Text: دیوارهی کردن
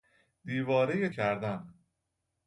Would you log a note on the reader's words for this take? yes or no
no